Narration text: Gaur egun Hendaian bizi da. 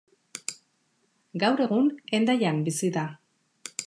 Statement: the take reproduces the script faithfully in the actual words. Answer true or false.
true